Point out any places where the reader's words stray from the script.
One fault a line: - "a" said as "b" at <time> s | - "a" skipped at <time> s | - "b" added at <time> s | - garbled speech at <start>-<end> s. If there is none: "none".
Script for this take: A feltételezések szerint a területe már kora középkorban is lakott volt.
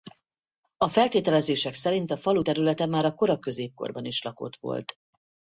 - "falu" added at 2.2 s
- "a" added at 3.0 s